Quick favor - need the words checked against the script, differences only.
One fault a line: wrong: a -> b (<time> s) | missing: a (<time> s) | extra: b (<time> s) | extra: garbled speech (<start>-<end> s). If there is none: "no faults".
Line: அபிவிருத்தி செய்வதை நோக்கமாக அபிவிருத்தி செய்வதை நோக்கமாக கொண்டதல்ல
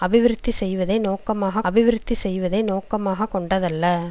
no faults